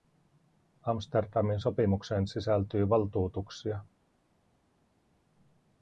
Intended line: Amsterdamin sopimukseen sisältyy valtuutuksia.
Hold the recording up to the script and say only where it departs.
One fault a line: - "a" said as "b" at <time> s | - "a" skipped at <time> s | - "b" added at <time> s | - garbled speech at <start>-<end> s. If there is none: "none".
none